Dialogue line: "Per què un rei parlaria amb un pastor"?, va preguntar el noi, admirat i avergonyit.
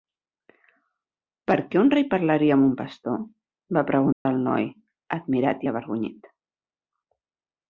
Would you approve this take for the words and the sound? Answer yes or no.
no